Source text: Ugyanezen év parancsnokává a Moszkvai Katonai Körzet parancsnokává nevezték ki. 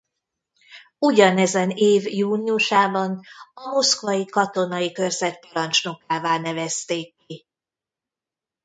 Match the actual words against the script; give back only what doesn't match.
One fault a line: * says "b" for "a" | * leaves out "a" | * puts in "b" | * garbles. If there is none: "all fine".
* says "júniusában" for "parancsnokává"